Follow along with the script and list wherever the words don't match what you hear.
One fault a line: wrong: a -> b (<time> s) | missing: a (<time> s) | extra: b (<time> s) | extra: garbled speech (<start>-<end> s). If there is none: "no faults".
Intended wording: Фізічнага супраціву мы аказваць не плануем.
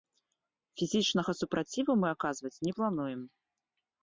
no faults